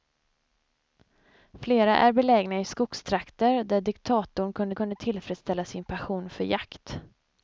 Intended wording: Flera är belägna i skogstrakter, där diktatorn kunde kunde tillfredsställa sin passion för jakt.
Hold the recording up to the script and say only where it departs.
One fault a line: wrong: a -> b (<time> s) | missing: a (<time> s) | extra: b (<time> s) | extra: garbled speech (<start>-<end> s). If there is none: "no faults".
no faults